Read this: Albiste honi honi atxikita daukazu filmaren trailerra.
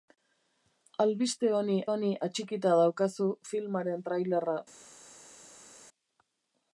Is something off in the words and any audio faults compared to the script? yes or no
no